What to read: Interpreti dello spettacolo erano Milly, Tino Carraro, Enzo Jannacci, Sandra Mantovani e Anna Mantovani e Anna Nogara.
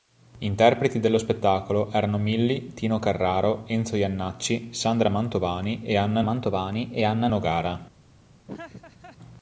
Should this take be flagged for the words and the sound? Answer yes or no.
yes